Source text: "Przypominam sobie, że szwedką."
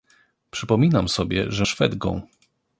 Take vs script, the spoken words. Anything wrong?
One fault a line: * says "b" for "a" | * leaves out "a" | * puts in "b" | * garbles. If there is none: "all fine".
all fine